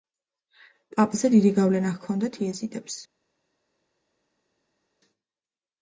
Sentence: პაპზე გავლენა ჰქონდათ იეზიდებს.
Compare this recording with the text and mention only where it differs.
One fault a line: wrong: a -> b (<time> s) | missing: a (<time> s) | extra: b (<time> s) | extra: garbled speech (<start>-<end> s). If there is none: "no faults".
extra: დიდი (1.3 s)